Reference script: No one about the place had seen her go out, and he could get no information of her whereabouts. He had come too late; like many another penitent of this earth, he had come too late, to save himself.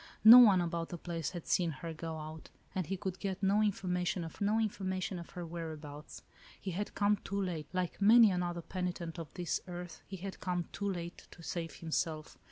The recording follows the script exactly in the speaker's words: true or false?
false